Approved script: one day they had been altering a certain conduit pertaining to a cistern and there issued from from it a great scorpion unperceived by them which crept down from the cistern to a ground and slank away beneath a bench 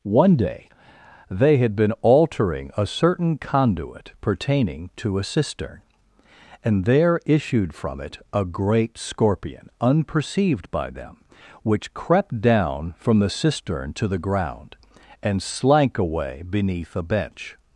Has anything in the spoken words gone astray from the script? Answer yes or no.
yes